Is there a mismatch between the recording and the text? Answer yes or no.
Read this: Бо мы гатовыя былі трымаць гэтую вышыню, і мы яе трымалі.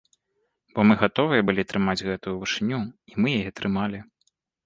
no